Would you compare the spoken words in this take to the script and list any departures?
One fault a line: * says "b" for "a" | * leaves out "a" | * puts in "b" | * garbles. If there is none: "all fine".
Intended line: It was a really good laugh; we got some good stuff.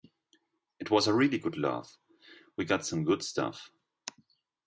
all fine